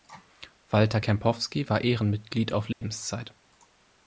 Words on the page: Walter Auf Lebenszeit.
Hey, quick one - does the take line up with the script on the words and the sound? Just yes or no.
no